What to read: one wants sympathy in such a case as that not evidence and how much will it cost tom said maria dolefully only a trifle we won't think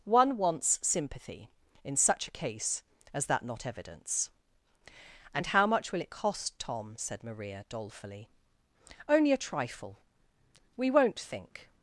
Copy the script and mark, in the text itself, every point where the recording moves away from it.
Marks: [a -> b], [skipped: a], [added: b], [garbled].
one wants sympathy in such a case as that not evidence and how much will it cost tom said maria dolefully only a trifle we won't think